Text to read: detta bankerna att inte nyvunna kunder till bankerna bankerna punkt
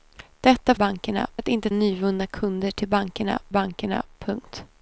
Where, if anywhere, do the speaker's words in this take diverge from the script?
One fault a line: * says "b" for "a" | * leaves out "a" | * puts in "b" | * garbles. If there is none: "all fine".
all fine